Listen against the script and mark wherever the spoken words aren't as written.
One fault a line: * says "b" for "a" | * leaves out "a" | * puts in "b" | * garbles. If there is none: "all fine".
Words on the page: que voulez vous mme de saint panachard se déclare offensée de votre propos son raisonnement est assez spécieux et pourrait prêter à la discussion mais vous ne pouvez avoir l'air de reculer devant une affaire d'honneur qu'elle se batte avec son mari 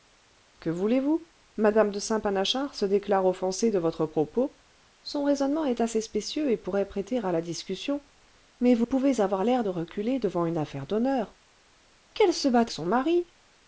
* leaves out "ne"
* leaves out "avec"